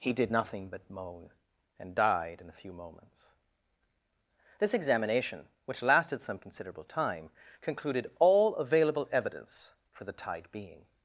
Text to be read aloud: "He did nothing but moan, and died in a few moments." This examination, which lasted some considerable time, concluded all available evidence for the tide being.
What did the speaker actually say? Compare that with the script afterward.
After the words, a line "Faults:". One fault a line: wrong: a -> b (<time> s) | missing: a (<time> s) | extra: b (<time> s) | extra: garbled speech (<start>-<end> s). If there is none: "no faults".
"He did nothing but moan, and died in a few moments." This examination, which lasted some considerable time, concluded all available evidence for the tide being.
Faults:
no faults